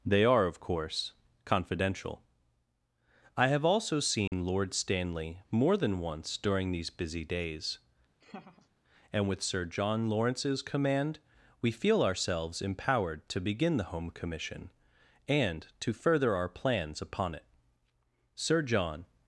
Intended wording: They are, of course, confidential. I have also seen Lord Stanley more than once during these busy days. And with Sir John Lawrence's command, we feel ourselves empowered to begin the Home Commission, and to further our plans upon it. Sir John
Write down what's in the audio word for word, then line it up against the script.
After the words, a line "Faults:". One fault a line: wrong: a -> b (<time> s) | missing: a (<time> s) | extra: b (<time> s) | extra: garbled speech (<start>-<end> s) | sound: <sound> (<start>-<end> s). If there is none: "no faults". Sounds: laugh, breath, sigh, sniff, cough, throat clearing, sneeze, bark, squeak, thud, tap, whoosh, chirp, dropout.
They are, of course, confidential. I have also seen Lord Stanley more than once during these busy days. And with Sir John Lawrence's command, we feel ourselves empowered to begin the Home Commission, and to further our plans upon it. Sir John
Faults:
sound: dropout (4.3-4.3 s)
sound: laugh (8.2-8.7 s)